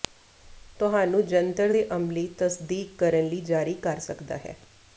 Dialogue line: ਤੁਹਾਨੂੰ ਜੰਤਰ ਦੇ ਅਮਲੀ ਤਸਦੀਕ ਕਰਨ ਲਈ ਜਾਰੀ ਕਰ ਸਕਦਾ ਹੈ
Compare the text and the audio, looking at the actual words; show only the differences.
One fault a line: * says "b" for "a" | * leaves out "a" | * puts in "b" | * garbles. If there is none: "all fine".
all fine